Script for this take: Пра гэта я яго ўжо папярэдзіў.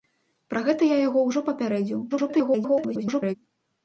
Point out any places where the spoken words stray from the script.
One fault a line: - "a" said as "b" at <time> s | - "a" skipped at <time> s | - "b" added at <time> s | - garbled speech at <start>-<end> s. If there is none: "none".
- garbled speech at 2.1-3.3 s